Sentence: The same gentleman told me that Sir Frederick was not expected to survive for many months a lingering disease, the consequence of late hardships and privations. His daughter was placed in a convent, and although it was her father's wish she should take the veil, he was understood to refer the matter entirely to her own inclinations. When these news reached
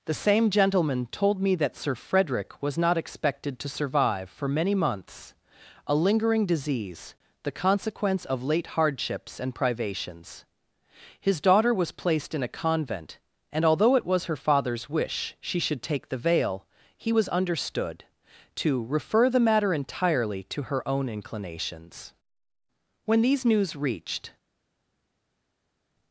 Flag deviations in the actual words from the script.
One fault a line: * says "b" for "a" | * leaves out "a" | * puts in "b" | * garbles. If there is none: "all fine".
all fine